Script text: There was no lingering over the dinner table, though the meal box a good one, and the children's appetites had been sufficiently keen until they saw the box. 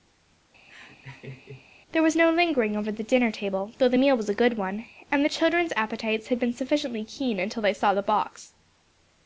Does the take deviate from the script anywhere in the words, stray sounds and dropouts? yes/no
yes